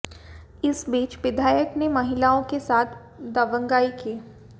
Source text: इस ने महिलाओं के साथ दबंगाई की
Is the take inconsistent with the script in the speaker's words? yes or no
yes